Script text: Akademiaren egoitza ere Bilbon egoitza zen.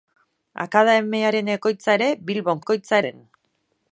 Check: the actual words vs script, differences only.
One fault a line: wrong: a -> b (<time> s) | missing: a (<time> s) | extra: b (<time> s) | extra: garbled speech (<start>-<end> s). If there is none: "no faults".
no faults